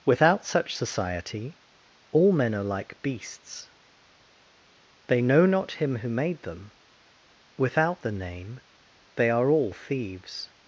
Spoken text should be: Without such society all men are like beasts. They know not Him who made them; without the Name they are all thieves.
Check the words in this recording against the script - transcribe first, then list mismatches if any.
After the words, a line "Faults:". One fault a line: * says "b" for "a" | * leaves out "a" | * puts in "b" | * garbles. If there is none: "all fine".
Without such society all men are like beasts. They know not Him who made them; without the Name they are all thieves.
Faults:
all fine